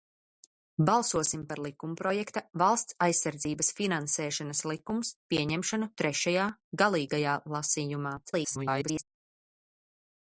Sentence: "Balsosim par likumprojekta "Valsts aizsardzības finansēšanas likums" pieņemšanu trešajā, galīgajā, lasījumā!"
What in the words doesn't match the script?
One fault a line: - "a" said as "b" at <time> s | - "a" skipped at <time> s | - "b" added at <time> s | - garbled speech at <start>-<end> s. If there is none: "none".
- garbled speech at 8.2-9.0 s